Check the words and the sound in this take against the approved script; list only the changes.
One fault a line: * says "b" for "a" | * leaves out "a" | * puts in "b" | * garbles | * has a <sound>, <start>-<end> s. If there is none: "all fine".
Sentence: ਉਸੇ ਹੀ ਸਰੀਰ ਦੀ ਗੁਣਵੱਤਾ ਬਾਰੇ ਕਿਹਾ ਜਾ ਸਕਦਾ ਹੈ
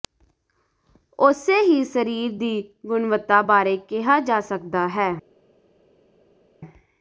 all fine